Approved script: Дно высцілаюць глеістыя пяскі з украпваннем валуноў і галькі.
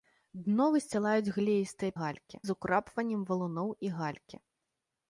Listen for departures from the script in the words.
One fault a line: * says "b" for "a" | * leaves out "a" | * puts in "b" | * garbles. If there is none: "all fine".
* says "галькі" for "пяскі"